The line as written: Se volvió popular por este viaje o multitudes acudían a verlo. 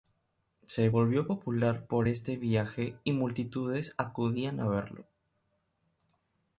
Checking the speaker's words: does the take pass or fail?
fail